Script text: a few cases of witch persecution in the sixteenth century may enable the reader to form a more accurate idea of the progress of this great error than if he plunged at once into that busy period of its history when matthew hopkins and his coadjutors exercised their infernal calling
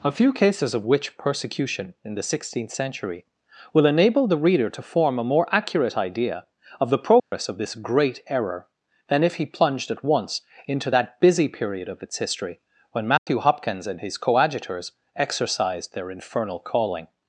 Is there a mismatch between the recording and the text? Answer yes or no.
yes